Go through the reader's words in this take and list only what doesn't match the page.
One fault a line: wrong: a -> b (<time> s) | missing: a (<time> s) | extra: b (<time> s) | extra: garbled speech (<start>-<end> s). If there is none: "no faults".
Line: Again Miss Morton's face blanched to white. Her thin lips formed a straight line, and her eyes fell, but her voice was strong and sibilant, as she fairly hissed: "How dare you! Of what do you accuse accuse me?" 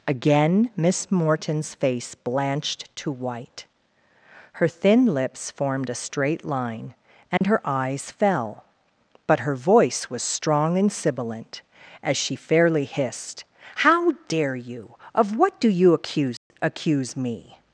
no faults